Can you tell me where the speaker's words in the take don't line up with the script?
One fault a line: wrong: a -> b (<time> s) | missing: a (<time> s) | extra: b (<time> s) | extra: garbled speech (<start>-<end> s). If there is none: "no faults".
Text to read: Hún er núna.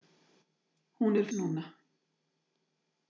no faults